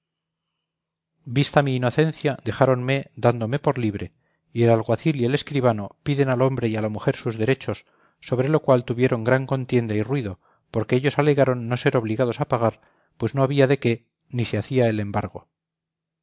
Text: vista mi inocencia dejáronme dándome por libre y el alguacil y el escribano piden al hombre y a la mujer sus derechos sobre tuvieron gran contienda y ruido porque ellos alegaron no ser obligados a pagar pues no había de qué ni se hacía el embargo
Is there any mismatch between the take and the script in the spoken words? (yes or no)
yes